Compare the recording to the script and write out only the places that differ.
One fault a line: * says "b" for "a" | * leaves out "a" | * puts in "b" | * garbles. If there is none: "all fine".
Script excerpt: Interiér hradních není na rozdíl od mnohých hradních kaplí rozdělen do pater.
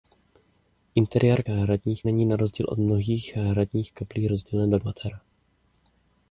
all fine